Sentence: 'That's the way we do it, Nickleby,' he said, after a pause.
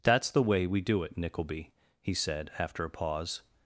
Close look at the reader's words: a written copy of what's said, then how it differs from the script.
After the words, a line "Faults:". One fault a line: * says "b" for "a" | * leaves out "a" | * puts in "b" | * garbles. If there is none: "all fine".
'That's the way we do it, Nickleby,' he said, after a pause.
Faults:
all fine